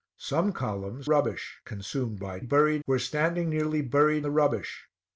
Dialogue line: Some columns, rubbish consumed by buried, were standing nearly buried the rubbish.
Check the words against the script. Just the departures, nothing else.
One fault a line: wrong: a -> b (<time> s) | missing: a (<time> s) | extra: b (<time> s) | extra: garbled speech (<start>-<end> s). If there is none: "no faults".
no faults